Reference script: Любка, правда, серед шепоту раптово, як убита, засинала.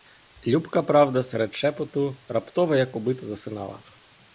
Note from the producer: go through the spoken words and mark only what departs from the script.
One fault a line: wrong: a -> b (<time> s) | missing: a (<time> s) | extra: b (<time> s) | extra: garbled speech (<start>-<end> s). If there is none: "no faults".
no faults